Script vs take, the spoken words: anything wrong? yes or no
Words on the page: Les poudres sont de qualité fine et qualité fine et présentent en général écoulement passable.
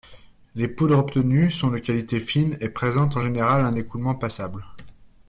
yes